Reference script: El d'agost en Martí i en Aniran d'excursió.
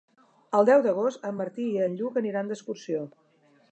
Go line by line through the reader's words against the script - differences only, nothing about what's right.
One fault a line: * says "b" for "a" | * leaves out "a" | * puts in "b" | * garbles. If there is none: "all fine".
* puts in "deu"
* puts in "Lluc"